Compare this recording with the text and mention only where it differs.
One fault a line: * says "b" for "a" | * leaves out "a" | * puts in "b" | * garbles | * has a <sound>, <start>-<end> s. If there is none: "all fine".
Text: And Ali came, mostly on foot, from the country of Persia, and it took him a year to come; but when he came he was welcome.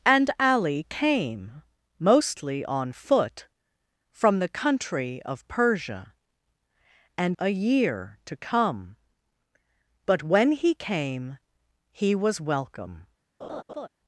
* leaves out "it took him"
* has a laugh, 13.4-13.9 s